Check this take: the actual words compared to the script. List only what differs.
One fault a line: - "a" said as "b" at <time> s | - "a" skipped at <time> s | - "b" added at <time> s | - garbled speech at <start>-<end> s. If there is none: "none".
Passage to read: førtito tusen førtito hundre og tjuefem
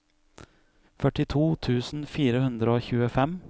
- "førtito" said as "fire" at 2.1 s